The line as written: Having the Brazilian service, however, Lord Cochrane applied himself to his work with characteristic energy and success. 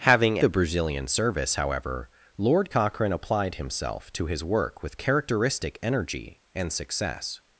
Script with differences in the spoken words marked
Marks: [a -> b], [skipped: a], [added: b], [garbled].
Having the Brazilian service, however, Lord Cochrane applied himself to his work with characteristic energy and success.